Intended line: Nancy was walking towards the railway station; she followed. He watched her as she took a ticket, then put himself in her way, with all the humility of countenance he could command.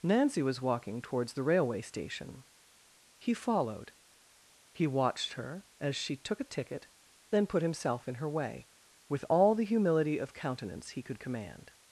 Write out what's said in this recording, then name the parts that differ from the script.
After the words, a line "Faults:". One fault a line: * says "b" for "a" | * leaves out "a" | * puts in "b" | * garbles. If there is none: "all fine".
Nancy was walking towards the railway station; he followed. He watched her as she took a ticket, then put himself in her way, with all the humility of countenance he could command.
Faults:
* says "he" for "she"